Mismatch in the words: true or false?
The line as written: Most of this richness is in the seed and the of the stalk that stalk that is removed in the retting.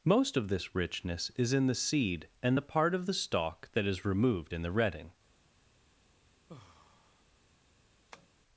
true